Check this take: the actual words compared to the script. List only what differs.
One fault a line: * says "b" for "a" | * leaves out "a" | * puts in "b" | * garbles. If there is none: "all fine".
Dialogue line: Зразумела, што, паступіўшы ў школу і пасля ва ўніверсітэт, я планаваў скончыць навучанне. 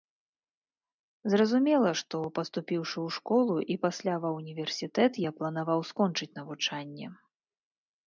all fine